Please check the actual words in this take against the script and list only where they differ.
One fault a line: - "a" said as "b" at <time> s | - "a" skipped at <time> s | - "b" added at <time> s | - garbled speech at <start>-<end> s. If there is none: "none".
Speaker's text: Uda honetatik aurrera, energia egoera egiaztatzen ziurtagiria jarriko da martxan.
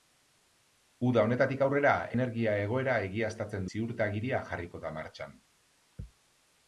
none